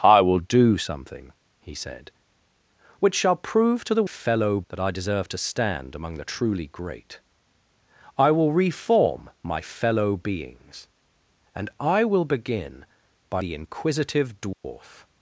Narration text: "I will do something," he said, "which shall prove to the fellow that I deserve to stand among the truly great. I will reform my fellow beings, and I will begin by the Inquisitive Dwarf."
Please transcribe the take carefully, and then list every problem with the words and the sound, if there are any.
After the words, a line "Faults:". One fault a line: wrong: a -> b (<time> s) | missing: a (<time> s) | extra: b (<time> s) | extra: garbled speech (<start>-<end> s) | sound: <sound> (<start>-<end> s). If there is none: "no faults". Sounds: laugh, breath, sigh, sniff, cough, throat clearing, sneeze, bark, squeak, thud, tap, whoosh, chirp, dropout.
"I will do something," he said, "which shall prove to the fellow that I deserve to stand among the truly great. I will reform my fellow beings, and I will begin by the Inquisitive Dwarf."
Faults:
sound: dropout (14.5-14.6 s)